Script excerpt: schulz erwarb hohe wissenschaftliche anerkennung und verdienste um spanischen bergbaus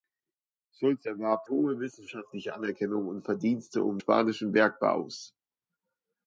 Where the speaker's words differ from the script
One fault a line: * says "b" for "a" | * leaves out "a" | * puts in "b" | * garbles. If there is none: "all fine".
all fine